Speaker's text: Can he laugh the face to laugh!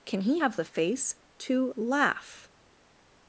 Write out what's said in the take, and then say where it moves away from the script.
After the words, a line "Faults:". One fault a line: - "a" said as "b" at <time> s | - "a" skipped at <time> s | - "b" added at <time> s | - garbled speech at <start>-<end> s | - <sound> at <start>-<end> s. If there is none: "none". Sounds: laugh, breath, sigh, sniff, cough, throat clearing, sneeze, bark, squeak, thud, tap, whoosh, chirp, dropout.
Can he have the face to laugh!
Faults:
- "laugh" said as "have" at 0.3 s